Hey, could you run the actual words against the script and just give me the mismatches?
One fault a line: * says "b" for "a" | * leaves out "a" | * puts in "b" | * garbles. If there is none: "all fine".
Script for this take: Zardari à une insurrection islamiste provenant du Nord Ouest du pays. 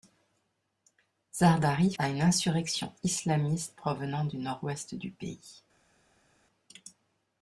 all fine